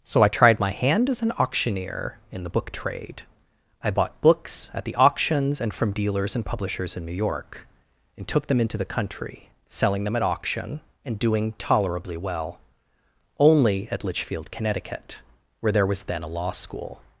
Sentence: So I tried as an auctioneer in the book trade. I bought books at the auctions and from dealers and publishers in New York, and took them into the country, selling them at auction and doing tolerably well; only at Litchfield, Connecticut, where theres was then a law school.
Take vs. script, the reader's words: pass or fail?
fail